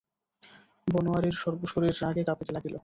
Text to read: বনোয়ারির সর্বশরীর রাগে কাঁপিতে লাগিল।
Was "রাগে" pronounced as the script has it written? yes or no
yes